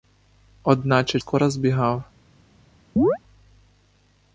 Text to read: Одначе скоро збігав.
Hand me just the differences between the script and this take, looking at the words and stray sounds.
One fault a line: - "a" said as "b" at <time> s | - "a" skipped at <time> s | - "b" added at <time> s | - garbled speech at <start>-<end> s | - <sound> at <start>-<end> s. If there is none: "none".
- chirp at 3.0-3.2 s